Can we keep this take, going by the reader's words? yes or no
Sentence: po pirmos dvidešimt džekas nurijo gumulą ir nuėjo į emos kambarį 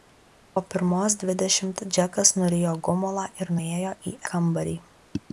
no